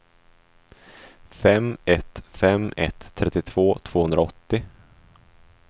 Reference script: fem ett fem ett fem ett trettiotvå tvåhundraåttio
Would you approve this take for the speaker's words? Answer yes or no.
no